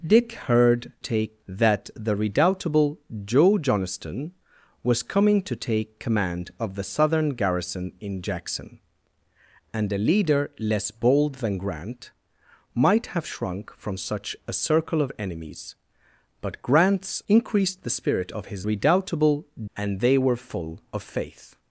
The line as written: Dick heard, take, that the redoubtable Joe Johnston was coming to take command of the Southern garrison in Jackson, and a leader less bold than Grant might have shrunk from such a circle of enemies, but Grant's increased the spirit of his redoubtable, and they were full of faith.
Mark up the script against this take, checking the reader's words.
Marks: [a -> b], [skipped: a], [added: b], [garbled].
Dick heard, take, that the redoubtable Joe Johnston was coming to take command of the Southern garrison in Jackson, and a leader less bold than Grant might have shrunk from such a circle of enemies, but Grant's increased the spirit of his redoubtable, and they were full of faith.